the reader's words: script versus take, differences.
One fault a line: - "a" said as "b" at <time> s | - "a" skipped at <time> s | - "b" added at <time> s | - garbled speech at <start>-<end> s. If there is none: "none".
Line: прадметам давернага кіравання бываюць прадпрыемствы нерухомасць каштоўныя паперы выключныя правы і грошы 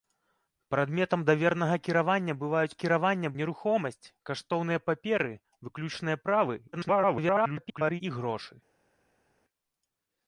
- "прадпрыемствы" said as "кіравання" at 2.8 s
- garbled speech at 6.7-8.0 s